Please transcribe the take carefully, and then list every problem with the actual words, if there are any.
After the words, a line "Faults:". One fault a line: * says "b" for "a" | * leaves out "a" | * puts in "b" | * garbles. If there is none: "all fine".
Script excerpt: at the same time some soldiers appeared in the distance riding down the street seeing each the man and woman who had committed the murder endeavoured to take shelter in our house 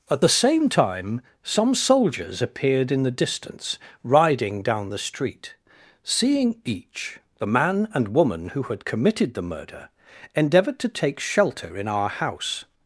at the same time some soldiers appeared in the distance riding down the street seeing each the man and woman who had committed the murder endeavoured to take shelter in our house
Faults:
all fine